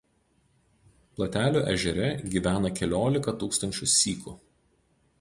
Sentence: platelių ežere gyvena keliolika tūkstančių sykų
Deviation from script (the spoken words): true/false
false